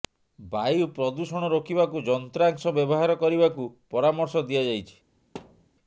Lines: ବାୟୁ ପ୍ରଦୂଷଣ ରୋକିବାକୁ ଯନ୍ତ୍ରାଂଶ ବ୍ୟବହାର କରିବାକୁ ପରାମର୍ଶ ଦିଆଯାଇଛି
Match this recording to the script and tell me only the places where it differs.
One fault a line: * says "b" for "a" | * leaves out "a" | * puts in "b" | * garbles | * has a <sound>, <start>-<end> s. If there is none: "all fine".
* has a thud, 5.3-5.7 s